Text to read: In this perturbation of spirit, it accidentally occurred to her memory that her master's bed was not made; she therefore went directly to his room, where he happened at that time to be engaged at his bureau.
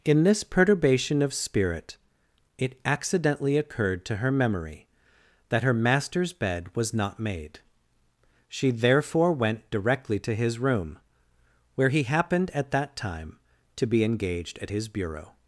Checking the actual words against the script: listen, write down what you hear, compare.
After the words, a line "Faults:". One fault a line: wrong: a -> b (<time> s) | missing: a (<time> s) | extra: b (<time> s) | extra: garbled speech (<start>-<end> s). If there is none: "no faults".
In this perturbation of spirit, it accidentally occurred to her memory that her master's bed was not made; she therefore went directly to his room, where he happened at that time to be engaged at his bureau.
Faults:
no faults